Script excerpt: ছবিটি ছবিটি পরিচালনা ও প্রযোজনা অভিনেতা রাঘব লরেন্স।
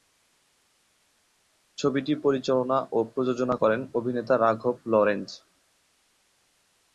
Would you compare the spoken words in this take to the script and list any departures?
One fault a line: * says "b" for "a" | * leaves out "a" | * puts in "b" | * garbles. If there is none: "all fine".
* leaves out "ছবিটি"
* puts in "করেন"